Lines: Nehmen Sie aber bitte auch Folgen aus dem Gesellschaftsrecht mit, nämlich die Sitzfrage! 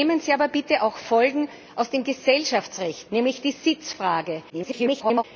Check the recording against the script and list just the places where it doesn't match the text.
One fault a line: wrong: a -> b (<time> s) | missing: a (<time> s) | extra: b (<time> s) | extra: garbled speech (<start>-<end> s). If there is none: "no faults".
missing: mit (3.1 s)
extra: garbled speech (4.5-5.2 s)